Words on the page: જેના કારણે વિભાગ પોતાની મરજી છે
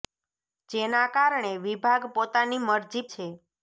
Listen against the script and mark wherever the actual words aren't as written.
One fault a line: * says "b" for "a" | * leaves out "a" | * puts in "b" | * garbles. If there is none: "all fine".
all fine